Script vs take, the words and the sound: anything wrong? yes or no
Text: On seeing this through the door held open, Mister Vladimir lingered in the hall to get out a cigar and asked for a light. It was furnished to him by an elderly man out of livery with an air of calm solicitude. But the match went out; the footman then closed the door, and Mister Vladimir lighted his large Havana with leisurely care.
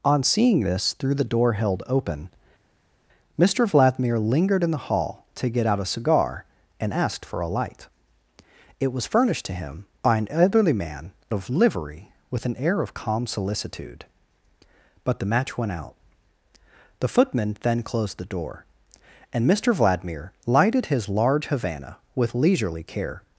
yes